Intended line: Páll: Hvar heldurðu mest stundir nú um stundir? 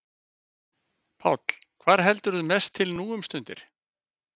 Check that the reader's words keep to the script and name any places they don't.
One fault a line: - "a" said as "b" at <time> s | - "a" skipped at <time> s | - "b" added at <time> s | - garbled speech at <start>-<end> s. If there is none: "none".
- "stundir" said as "til" at 2.8 s